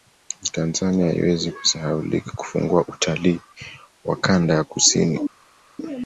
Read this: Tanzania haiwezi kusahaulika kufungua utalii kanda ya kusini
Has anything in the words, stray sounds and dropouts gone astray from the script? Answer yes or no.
yes